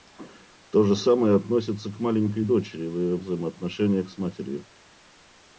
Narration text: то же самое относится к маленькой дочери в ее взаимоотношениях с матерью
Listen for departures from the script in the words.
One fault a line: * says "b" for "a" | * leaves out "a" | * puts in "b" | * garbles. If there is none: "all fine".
all fine